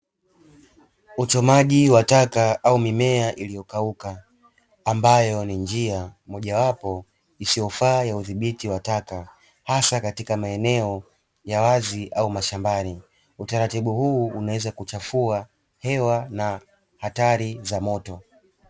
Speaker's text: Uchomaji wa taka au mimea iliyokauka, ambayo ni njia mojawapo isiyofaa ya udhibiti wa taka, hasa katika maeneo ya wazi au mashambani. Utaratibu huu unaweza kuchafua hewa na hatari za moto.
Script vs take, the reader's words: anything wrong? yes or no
no